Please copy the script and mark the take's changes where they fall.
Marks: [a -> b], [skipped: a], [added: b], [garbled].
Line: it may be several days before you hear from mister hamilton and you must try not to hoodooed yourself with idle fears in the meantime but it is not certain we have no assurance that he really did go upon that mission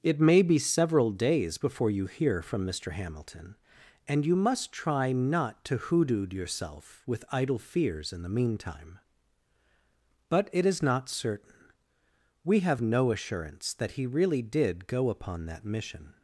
it may be several days before you hear from mister hamilton and you must try not to hoodooed yourself with idle fears in the meantime but it is not certain we have no assurance that he really did go upon that mission